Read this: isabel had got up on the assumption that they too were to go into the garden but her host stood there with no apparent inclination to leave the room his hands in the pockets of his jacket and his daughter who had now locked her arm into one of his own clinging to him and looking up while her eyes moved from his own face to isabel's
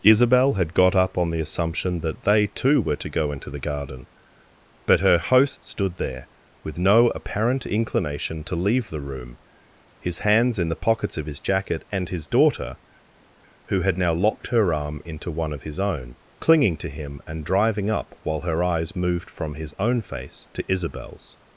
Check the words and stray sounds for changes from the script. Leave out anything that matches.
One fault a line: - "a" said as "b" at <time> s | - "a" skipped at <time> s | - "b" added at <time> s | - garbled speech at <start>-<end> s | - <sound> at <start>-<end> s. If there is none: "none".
- "looking" said as "driving" at 17.4 s